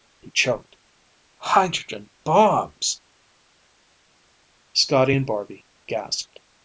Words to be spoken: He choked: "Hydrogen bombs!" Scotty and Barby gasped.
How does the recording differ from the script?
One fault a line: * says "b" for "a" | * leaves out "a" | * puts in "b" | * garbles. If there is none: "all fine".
all fine